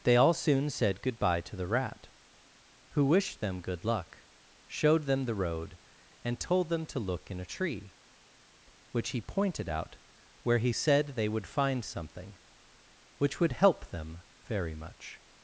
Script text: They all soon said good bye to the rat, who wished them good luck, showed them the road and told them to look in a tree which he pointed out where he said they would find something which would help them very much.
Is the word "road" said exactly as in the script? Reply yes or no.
yes